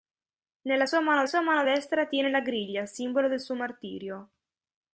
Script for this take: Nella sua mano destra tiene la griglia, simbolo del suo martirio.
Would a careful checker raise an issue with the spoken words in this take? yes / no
yes